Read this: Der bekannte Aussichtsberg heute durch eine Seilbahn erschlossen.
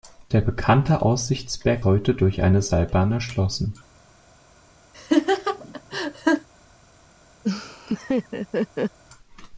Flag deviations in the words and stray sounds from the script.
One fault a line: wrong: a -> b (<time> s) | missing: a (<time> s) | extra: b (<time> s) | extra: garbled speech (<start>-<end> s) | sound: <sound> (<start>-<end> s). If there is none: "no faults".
sound: laugh (4.9-6.5 s)
sound: laugh (7.4-9.0 s)